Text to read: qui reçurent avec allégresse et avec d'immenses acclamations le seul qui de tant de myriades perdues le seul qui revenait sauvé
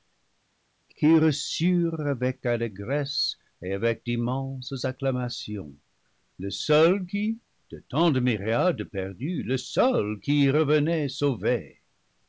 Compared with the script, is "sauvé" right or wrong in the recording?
right